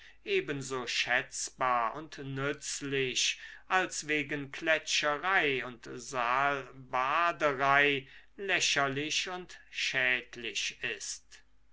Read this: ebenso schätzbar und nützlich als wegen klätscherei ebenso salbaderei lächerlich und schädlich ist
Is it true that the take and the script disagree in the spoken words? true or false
true